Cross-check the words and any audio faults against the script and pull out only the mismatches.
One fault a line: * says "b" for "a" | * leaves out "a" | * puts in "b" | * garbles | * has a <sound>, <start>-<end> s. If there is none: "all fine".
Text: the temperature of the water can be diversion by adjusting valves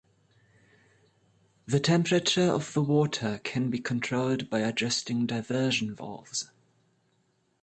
* says "controlled" for "diversion"
* puts in "diversion"